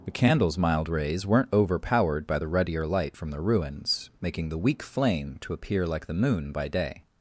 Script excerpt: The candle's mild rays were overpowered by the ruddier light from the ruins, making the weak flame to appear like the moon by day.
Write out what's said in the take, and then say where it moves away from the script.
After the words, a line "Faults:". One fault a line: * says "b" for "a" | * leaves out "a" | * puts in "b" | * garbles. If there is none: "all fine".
The candle's mild rays weren't overpowered by the ruddier light from the ruins, making the weak flame to appear like the moon by day.
Faults:
* says "weren't" for "were"